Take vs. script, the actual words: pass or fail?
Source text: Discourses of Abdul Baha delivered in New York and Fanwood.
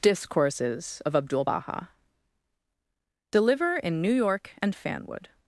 fail